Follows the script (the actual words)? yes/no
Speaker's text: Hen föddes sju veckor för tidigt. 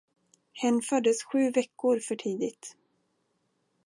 yes